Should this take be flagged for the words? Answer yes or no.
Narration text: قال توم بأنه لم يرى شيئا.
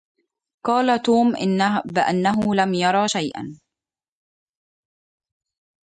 no